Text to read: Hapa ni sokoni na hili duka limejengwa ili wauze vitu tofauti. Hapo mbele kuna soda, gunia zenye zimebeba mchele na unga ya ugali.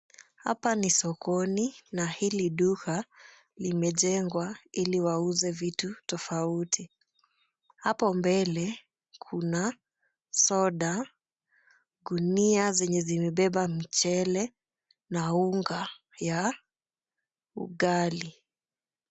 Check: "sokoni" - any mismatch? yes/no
no